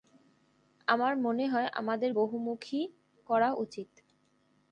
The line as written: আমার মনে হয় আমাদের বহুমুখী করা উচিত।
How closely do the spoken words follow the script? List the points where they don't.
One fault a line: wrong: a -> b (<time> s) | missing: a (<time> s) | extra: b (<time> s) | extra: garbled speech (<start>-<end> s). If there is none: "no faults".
no faults